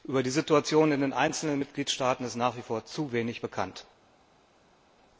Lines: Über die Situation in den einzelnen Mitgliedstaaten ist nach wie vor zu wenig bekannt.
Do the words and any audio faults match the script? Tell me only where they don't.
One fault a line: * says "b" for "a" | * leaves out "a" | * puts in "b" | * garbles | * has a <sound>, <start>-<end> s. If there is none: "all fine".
all fine